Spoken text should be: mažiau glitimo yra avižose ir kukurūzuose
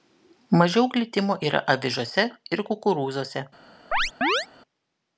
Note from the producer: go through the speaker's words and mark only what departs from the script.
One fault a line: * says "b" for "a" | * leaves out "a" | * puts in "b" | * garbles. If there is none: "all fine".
all fine